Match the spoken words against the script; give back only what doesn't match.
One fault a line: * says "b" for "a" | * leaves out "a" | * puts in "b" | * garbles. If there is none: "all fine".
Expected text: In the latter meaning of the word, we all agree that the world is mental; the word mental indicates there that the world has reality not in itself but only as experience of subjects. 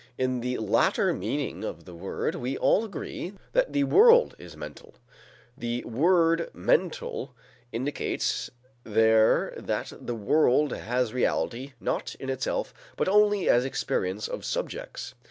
all fine